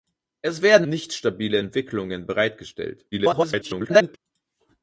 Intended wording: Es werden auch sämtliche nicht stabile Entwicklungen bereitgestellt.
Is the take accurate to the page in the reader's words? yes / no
no